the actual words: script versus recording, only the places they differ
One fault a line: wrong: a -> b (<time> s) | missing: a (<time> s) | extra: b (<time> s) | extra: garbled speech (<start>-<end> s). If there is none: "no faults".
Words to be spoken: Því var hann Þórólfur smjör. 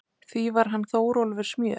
no faults